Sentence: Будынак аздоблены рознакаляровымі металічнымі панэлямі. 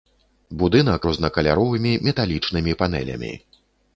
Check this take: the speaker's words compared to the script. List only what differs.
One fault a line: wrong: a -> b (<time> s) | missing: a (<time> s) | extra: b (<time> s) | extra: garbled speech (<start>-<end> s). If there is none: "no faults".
missing: аздоблены (1.0 s)